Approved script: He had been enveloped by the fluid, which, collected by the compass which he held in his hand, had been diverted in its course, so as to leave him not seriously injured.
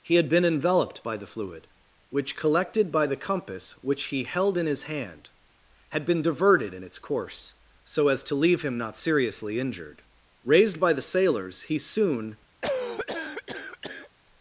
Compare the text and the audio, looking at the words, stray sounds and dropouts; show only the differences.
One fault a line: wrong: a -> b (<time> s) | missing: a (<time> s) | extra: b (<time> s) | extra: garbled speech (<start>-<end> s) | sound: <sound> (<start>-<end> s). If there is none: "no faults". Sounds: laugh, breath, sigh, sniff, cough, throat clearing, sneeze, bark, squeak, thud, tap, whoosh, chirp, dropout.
extra: Raised by the sailors he soon (10.4 s)
sound: cough (12.6-14.1 s)